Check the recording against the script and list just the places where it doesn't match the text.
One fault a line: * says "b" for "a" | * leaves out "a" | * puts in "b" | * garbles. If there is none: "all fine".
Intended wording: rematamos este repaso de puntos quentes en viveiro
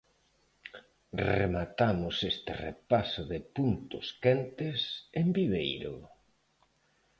all fine